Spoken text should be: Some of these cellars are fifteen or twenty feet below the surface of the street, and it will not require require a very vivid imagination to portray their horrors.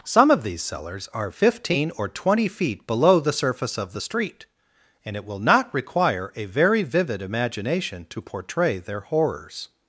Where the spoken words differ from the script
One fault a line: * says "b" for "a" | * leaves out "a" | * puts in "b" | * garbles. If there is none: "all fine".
* leaves out "require"